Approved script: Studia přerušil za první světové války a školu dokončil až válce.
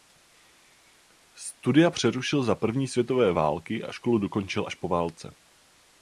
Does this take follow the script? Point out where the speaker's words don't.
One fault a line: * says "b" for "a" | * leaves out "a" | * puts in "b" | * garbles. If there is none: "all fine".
* puts in "po"